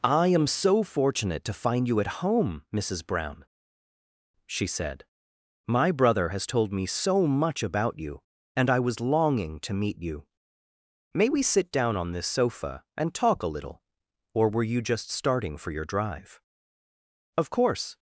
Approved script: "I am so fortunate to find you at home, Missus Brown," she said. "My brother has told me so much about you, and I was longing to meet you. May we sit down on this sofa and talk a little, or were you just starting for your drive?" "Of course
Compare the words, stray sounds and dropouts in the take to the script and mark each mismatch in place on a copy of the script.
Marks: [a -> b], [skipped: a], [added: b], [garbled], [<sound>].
"I am so fortunate to find you at home, Missus Brown," she said. "My brother has told me so much about you, and I was longing to meet you. May we sit down on this sofa and talk a little, or were you just starting for your drive?" "Of course